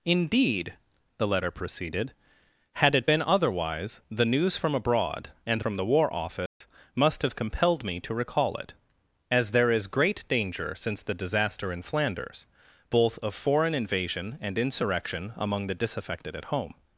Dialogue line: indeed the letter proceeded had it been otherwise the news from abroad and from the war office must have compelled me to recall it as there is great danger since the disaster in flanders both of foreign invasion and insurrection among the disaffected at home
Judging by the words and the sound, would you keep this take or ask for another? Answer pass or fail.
fail